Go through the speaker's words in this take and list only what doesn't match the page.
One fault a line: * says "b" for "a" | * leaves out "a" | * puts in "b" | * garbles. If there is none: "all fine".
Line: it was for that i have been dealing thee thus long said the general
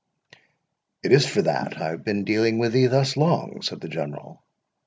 * says "is" for "was"
* puts in "with"